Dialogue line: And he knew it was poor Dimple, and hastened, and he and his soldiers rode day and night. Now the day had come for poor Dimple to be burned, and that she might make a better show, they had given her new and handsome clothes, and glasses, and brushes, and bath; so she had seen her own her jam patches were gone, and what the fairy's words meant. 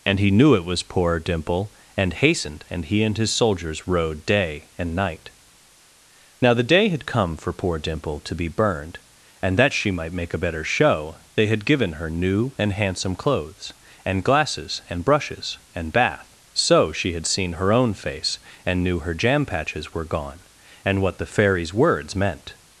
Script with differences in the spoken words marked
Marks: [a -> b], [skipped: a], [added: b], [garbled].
And he knew it was poor Dimple, and hastened, and he and his soldiers rode day and night. Now the day had come for poor Dimple to be burned, and that she might make a better show, they had given her new and handsome clothes, and glasses, and brushes, and bath; so she had seen her own [added: face and knew] her jam patches were gone, and what the fairy's words meant.